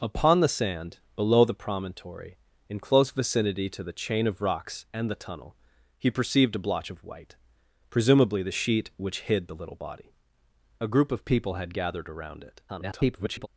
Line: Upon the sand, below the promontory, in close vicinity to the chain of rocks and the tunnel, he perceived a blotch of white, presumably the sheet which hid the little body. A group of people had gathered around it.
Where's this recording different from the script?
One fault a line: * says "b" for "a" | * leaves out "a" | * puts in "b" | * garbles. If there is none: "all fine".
* garbles